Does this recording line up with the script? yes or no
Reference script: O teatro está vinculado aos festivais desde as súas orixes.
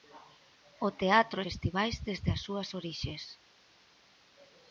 no